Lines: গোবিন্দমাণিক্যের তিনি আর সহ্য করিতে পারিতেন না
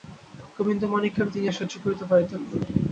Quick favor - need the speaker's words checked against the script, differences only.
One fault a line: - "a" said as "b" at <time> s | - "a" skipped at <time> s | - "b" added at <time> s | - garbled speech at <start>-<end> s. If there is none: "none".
none